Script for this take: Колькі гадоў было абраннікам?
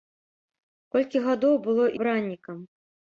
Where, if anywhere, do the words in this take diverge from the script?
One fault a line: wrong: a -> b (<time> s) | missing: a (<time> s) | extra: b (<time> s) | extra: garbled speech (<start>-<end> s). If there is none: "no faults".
no faults